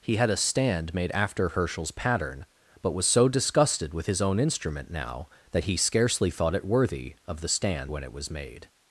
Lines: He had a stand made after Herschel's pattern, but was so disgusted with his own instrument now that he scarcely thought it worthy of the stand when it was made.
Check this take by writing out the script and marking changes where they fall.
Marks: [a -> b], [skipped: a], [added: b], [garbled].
He had a stand made after Herschel's pattern, but was so disgusted with his own instrument now that he scarcely thought it worthy of the stand when it was made.